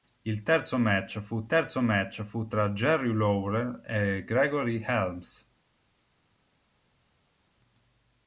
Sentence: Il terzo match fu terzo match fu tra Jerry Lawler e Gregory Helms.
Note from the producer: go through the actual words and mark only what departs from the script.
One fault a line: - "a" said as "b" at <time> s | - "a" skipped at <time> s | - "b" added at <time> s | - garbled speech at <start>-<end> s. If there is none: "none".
none